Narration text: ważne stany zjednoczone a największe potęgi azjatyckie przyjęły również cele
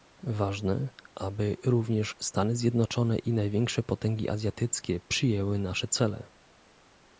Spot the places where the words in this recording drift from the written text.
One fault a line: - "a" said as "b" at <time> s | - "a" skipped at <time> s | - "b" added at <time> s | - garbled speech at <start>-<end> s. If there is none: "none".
- "aby również" added at 1.1 s
- "a" said as "i" at 3.2 s
- "również" said as "nasze" at 5.6 s